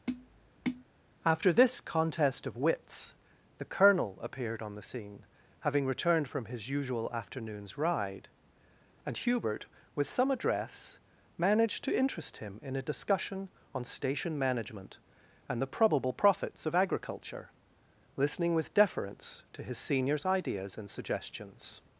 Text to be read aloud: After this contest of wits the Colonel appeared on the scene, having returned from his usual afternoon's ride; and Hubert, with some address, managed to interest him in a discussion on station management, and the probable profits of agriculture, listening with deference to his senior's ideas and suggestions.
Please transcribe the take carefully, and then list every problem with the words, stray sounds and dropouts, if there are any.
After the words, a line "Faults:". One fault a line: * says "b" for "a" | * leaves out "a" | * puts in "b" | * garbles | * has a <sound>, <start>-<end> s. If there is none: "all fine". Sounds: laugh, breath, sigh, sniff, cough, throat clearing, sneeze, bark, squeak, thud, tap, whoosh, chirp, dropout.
After this contest of wits the Colonel appeared on the scene, having returned from his usual afternoon's ride; and Hubert, with some address, managed to interest him in a discussion on station management, and the probable profits of agriculture, listening with deference to his senior's ideas and suggestions.
Faults:
* has a tap, 0.1-0.8 s